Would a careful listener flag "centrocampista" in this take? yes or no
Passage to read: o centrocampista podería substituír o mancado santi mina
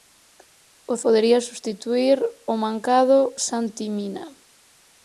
yes